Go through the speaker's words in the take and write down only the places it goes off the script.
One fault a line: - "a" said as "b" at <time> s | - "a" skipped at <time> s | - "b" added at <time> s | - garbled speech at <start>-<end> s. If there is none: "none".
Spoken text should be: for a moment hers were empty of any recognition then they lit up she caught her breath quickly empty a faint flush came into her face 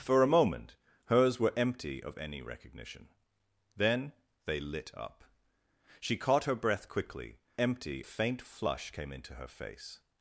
none